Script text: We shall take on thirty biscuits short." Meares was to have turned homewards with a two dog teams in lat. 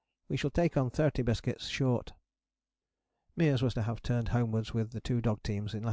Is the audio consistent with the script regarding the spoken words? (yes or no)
no